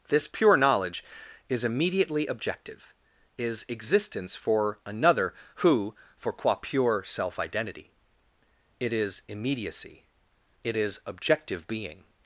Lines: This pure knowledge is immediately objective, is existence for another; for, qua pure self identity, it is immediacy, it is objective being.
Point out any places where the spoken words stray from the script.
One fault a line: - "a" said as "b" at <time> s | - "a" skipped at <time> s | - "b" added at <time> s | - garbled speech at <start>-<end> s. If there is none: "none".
- "who" added at 5.5 s